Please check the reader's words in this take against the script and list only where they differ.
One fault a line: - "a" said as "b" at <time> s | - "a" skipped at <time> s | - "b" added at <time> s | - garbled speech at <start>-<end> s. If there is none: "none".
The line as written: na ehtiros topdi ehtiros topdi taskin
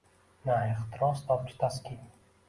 - "ehtiros topdi" skipped at 1.6 s